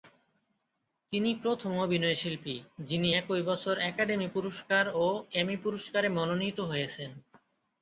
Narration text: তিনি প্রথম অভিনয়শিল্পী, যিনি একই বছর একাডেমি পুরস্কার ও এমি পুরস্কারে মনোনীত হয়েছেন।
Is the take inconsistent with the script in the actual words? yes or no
no